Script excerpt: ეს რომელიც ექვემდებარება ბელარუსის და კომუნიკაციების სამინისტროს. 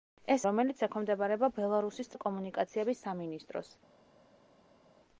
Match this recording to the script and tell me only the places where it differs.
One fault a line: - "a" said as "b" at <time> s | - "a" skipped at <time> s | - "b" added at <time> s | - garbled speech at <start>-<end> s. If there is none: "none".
none